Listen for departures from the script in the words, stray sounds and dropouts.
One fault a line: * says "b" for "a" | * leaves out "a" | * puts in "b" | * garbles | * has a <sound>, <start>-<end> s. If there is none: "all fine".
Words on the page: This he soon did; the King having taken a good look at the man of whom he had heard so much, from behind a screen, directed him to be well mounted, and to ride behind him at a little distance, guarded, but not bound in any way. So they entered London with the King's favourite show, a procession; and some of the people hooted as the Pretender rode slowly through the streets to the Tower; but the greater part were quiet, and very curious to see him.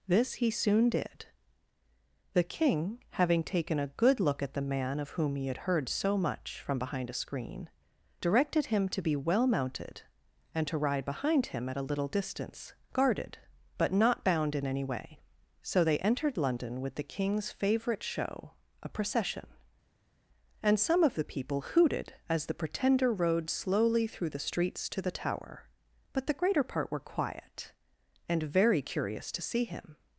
all fine